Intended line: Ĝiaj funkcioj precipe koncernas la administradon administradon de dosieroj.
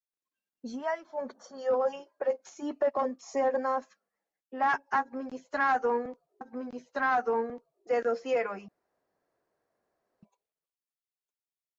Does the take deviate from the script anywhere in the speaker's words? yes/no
no